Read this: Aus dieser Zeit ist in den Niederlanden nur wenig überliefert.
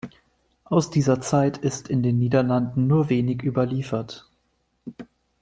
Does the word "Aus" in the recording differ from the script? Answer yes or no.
no